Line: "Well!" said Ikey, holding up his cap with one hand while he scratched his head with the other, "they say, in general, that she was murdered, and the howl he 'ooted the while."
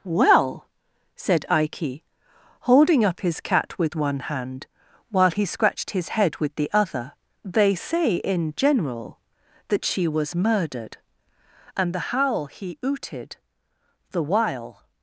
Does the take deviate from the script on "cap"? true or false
true